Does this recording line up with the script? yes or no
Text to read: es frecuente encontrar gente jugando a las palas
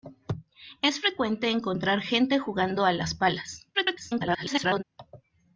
no